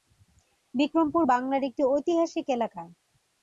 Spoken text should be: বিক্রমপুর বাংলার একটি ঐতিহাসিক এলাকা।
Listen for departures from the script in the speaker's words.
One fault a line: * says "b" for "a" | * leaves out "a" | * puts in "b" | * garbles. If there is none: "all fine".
all fine